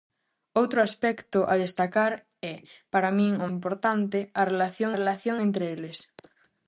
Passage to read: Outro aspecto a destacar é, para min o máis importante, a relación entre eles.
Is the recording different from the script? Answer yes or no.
yes